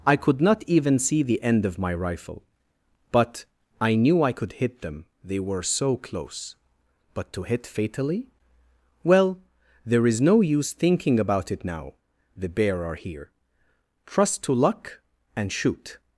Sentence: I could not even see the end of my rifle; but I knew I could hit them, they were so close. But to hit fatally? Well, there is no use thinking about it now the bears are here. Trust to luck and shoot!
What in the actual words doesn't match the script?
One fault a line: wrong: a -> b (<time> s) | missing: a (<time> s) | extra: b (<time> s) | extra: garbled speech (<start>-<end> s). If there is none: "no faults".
wrong: bears -> bear (12.5 s)